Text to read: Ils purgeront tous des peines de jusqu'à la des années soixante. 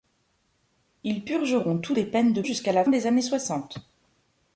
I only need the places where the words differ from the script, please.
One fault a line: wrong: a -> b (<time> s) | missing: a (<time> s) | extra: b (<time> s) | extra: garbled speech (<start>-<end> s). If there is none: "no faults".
no faults